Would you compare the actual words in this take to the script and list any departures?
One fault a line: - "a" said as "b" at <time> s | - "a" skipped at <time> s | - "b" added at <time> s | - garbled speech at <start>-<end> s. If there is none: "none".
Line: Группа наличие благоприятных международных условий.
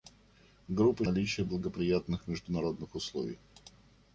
none